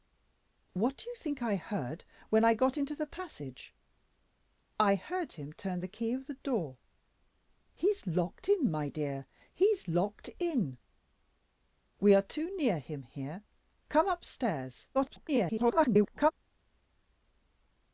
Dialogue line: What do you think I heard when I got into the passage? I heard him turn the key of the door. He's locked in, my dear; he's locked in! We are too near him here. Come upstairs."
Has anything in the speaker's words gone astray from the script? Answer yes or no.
yes